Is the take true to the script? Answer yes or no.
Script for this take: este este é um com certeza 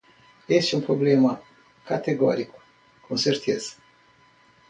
no